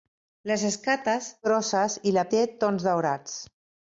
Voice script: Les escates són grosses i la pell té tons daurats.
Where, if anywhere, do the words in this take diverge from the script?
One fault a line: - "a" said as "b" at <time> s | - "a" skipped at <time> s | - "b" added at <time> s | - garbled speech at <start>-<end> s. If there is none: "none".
- "són" skipped at 1.3 s
- "pell" skipped at 2.3 s